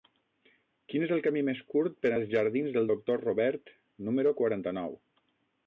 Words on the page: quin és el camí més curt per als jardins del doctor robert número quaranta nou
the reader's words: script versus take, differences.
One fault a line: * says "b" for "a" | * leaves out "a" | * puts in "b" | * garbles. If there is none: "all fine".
all fine